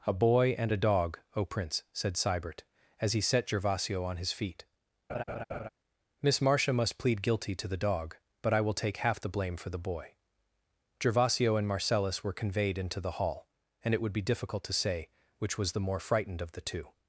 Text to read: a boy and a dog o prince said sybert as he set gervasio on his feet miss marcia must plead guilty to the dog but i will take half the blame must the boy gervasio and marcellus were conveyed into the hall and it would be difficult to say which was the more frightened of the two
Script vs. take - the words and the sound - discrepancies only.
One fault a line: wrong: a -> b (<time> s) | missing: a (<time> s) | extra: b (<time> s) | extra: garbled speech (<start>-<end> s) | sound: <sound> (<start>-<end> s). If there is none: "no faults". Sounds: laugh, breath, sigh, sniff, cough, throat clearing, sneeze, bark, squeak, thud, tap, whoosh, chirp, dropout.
sound: laugh (5.1-5.7 s)
wrong: must -> for (9.6 s)